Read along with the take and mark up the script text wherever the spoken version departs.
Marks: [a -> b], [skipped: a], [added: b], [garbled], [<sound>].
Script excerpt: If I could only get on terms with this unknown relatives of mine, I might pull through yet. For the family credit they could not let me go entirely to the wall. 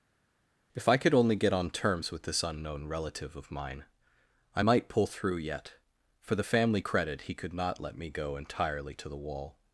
If I could only get on terms with this unknown [relatives -> relative] of mine, I might pull through yet. For the family credit [they -> he] could not let me go entirely to the wall.